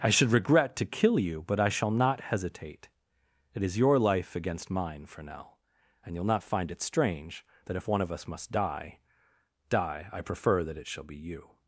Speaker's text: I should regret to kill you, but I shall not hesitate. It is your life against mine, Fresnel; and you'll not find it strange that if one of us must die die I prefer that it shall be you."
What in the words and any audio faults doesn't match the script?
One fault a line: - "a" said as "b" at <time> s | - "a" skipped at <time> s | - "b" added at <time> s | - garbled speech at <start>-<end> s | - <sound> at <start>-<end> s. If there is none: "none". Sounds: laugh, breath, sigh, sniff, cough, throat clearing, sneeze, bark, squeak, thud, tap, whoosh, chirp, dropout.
none